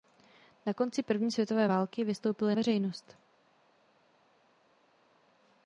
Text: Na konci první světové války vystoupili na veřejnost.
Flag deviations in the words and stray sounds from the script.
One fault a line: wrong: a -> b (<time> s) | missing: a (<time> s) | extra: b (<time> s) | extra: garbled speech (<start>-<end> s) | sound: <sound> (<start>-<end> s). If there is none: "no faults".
missing: na (2.5 s)